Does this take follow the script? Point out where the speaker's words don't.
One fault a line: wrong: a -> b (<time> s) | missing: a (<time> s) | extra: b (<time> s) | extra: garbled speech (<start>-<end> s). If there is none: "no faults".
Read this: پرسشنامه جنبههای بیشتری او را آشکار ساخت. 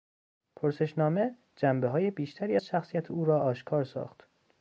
extra: از شخصیت (2.5 s)